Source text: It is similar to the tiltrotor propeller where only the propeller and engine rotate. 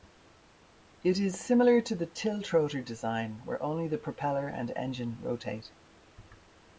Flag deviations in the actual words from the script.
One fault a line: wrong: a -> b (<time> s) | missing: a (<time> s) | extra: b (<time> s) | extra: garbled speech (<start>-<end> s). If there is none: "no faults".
wrong: propeller -> design (2.8 s)